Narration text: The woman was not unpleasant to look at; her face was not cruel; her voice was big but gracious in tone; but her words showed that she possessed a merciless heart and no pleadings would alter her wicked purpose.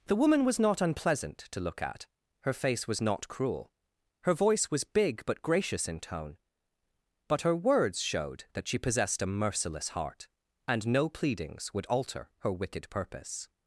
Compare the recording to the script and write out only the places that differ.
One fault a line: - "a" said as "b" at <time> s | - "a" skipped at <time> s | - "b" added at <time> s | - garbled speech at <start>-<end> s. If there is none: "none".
none